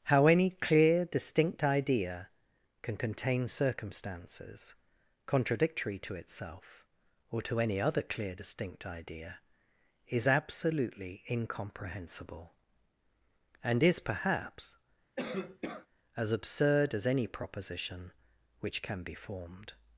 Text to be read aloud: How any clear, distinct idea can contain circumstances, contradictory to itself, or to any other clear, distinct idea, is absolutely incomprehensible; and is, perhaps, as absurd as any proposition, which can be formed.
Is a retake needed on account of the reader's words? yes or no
no